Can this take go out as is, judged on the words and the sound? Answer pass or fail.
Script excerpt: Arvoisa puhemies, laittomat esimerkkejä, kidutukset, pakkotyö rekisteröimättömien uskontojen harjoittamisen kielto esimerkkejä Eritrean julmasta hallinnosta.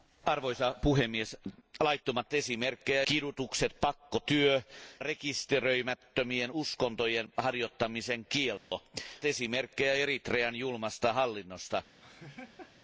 fail